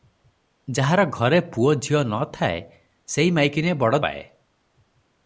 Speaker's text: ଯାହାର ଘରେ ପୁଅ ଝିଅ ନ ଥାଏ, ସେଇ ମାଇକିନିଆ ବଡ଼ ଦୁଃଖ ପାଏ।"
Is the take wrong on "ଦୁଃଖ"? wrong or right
wrong